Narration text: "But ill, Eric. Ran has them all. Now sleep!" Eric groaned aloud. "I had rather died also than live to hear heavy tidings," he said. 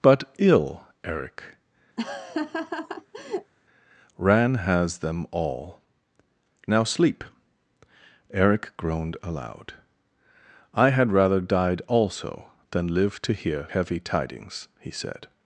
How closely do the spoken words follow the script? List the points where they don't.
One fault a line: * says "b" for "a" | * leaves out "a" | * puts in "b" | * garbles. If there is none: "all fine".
all fine